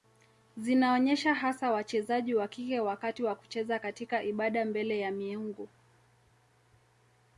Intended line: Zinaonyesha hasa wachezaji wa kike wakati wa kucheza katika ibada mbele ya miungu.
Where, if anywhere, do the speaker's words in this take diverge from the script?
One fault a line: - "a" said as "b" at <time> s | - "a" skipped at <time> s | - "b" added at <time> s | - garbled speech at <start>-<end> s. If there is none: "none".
none